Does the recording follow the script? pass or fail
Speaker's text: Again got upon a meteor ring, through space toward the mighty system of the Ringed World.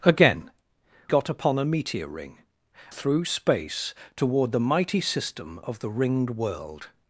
pass